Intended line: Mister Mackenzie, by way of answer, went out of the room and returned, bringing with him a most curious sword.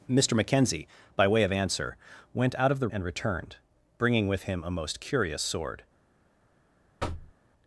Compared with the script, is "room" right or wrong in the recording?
wrong